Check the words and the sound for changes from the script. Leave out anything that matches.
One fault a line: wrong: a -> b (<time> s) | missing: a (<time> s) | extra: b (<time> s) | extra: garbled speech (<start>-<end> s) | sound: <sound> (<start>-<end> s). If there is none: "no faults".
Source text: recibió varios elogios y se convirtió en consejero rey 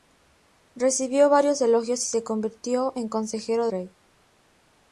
no faults